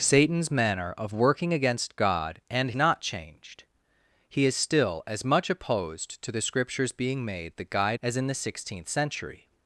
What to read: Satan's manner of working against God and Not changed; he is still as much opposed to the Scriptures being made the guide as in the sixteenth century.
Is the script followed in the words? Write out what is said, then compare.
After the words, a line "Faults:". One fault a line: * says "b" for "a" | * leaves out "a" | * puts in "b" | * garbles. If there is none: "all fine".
Satan's manner of working against God and Not changed; he is still as much opposed to the Scriptures being made the guide as in the sixteenth century.
Faults:
all fine